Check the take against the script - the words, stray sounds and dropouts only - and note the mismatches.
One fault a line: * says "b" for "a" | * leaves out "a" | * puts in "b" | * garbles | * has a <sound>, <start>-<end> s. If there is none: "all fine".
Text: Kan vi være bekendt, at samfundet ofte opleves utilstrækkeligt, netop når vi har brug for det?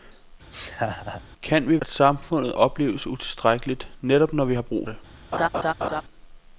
* has a laugh, 0.5-1.2 s
* leaves out "være bekendt"
* leaves out "ofte"
* leaves out "for"
* has a laugh, 5.3-6.0 s